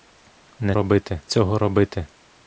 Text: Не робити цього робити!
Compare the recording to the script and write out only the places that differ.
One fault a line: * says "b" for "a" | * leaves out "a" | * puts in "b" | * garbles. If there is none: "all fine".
all fine